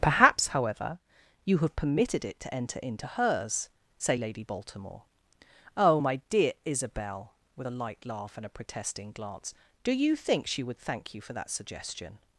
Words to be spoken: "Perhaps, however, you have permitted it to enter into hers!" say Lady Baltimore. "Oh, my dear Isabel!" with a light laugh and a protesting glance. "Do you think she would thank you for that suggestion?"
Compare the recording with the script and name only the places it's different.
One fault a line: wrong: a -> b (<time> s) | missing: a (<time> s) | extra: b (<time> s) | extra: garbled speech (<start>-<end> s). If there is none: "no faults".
no faults